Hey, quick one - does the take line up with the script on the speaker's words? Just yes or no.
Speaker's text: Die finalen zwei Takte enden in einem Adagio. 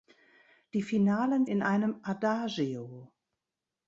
no